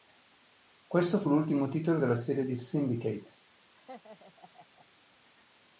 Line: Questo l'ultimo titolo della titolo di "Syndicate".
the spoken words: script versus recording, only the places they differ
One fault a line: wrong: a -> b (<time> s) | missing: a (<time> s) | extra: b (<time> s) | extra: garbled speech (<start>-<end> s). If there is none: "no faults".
extra: fu (1.2 s)
wrong: titolo -> serie (2.1 s)